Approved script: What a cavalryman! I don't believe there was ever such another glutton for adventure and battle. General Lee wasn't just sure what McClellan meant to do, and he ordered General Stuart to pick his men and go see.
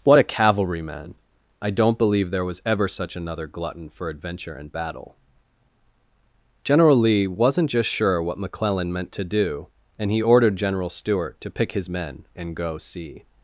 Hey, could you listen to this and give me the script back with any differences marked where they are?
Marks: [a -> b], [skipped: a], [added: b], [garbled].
What a cavalryman! I don't believe there was ever such another glutton for adventure and battle. General Lee wasn't just sure what McClellan meant to do, and he ordered General Stuart to pick his men and go see.